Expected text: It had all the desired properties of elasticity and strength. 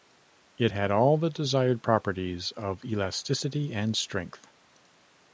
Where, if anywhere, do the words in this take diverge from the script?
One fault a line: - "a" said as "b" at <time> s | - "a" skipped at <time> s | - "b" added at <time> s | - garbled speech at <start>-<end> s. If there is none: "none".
none